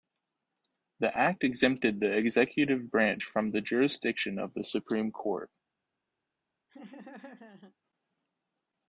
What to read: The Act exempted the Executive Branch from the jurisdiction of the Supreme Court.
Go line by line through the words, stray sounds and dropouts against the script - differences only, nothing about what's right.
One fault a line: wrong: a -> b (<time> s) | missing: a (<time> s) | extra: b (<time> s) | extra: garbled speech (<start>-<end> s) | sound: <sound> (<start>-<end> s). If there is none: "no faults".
sound: laugh (6.7-7.8 s)